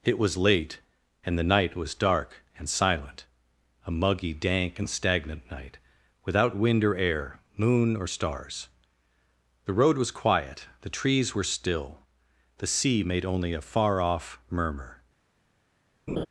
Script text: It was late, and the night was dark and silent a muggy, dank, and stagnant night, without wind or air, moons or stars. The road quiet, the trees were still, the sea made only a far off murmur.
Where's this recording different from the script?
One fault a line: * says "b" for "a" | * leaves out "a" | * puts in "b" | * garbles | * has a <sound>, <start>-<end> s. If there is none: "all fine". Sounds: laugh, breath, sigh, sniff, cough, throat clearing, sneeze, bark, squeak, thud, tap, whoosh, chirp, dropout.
* says "moon" for "moons"
* puts in "was"
* has a laugh, 16.1-16.3 s